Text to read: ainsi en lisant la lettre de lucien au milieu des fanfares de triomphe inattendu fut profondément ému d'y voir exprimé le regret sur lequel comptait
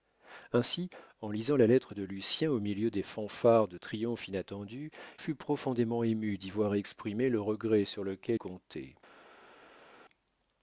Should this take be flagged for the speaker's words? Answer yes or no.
no